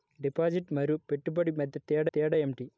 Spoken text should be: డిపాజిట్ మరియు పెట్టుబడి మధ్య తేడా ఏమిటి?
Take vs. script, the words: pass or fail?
fail